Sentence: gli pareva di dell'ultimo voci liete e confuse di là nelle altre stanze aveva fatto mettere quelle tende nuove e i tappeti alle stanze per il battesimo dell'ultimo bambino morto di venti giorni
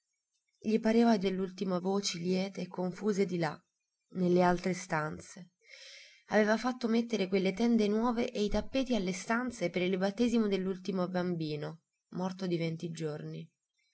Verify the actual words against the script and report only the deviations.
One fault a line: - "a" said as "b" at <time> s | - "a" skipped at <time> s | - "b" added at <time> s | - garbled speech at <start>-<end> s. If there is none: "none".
none